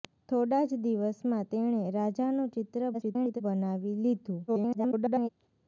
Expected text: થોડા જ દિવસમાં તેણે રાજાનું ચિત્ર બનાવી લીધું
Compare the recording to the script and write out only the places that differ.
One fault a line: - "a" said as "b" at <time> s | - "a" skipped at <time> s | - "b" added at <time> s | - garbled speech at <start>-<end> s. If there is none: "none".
- garbled speech at 2.9-3.4 s
- garbled speech at 4.5-5.3 s